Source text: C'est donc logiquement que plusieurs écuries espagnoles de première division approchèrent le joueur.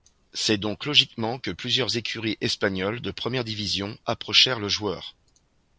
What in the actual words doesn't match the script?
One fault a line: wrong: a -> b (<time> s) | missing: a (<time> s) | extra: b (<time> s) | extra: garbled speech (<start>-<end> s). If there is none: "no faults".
no faults